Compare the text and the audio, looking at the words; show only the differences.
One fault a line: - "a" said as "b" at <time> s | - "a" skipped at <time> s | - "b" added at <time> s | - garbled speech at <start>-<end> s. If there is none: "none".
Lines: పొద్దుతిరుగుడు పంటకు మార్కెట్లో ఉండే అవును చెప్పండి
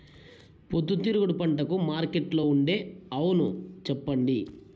none